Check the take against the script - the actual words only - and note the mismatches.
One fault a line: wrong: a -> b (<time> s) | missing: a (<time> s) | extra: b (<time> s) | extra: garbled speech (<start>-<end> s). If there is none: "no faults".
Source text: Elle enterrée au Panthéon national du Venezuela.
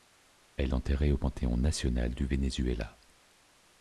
no faults